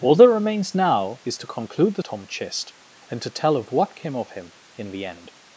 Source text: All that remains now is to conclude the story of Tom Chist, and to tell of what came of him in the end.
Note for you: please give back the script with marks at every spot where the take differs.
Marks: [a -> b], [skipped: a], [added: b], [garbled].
All that remains now is to conclude the [skipped: story of] Tom Chist, and to tell of what came of him in the end.